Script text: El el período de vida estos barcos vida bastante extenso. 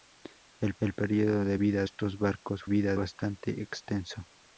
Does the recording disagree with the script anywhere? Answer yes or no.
no